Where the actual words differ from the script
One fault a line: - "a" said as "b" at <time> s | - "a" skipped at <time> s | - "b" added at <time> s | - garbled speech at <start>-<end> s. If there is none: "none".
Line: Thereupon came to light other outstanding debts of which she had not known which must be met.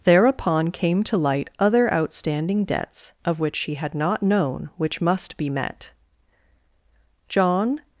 - "John" added at 7.3 s